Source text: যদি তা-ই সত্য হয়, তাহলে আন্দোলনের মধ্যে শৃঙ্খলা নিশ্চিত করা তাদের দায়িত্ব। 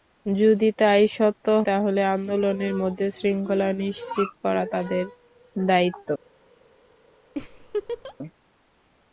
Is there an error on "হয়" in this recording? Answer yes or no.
yes